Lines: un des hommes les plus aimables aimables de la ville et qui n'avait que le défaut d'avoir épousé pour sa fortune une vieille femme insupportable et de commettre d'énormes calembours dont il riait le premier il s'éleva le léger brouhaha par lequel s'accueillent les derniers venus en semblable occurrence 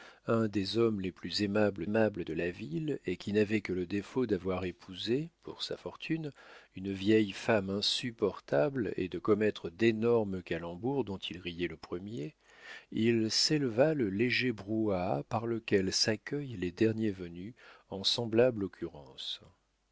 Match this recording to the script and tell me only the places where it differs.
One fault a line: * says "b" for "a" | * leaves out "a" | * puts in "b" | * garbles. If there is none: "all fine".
all fine